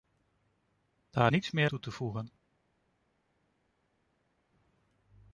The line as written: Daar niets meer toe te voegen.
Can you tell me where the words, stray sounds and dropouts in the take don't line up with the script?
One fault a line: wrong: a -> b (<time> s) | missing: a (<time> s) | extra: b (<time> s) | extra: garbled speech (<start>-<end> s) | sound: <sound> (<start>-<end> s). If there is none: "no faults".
no faults